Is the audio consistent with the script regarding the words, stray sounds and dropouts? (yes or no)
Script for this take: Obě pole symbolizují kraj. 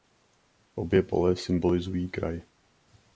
yes